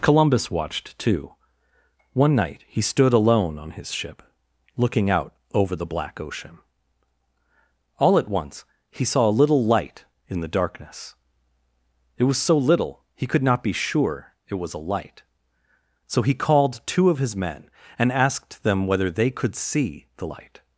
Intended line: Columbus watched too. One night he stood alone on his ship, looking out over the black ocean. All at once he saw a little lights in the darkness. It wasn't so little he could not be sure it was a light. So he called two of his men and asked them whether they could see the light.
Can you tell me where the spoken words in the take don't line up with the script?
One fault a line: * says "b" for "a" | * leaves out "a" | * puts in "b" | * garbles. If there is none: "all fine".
* says "light" for "lights"
* says "was" for "wasn't"